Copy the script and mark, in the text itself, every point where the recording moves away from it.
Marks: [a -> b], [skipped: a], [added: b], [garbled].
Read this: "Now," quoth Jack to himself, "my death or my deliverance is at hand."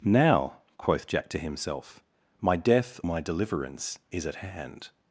"Now," quoth Jack to himself, "my death [skipped: or] my deliverance is at hand."